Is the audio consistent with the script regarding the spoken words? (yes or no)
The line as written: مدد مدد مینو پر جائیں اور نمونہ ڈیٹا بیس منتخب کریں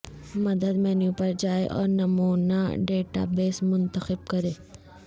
no